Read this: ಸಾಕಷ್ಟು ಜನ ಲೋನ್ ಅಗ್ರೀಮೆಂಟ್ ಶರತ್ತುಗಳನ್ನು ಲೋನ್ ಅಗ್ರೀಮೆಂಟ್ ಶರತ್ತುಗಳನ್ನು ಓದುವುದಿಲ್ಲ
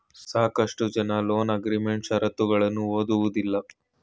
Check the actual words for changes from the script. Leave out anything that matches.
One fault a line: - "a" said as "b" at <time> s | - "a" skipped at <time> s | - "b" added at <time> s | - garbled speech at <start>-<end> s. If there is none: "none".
- "ಲೋನ್ ಅಗ್ರೀಮೆಂಟ್ ಶರತ್ತುಗಳನ್ನು" skipped at 2.9 s